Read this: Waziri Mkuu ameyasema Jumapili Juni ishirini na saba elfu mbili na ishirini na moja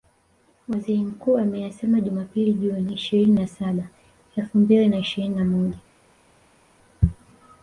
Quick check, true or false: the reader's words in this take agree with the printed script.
true